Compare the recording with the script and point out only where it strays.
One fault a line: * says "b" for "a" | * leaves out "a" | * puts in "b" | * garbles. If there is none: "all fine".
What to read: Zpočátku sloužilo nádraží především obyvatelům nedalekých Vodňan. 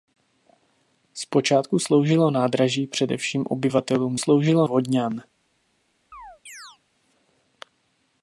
* says "sloužilo" for "nedalekých"